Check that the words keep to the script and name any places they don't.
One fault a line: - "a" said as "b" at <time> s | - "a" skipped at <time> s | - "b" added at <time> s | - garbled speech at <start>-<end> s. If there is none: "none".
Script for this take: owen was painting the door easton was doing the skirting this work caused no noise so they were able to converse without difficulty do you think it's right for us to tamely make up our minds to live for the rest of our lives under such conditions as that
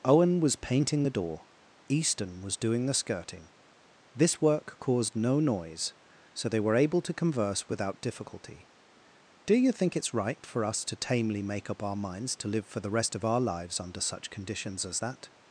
none